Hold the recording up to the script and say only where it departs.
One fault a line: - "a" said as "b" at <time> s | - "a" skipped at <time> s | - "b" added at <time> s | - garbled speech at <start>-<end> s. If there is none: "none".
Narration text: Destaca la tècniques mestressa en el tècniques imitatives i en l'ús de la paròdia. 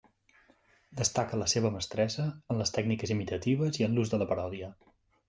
- "tècniques" said as "seva" at 1.5 s
- "el" said as "les" at 2.6 s